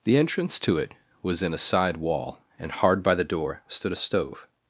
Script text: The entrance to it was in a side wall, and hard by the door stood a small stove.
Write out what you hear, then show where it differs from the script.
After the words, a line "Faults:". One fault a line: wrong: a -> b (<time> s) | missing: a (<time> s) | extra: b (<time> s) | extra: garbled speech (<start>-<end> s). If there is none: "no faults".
The entrance to it was in a side wall, and hard by the door stood a stove.
Faults:
missing: small (4.0 s)